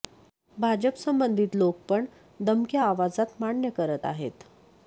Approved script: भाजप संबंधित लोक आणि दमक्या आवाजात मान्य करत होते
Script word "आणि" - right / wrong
wrong